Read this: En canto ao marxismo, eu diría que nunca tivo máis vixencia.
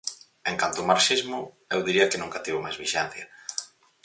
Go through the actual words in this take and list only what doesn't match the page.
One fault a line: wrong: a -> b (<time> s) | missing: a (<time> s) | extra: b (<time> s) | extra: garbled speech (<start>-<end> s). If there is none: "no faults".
no faults